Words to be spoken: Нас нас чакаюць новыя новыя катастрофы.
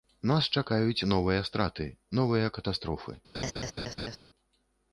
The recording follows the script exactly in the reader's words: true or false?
false